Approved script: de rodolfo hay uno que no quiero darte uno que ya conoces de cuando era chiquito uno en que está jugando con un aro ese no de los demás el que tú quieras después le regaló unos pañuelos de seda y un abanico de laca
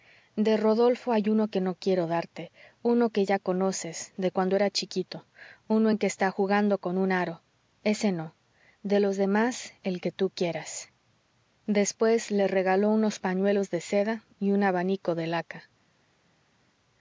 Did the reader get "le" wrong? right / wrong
right